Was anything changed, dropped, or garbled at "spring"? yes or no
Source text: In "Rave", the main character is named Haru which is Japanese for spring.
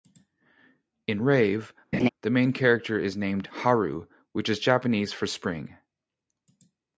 no